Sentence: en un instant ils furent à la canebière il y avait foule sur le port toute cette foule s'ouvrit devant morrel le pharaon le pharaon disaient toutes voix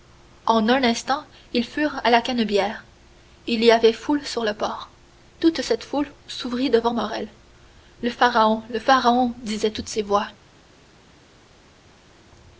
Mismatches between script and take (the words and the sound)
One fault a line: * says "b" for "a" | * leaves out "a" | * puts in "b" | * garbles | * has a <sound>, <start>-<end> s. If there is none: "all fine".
* puts in "ces"